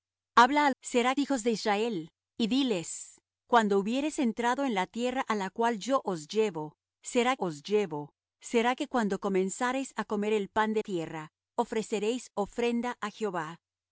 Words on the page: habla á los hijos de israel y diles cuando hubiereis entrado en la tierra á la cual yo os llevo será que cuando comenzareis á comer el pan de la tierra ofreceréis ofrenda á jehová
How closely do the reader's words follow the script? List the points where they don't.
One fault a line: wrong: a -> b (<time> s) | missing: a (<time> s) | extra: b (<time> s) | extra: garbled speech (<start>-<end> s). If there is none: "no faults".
wrong: los -> será (0.8 s)
extra: os llevo será (7.4 s)
missing: la (10.8 s)